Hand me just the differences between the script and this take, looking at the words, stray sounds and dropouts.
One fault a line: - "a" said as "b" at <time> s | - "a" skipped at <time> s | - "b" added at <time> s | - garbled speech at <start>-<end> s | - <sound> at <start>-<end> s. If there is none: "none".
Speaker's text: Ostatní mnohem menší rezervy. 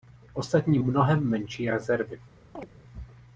- chirp at 2.5-2.7 s